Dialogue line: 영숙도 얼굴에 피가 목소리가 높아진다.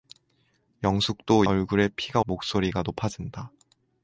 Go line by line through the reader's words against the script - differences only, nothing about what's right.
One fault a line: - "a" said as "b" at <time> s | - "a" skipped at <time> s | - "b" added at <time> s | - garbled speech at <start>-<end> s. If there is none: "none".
none